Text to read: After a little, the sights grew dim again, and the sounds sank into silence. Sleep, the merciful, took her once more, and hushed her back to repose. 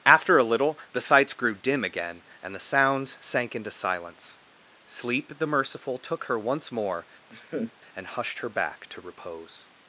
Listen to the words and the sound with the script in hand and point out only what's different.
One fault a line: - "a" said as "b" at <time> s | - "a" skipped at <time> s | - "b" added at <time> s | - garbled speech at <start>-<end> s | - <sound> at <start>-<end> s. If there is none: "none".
- laugh at 7.3-7.7 s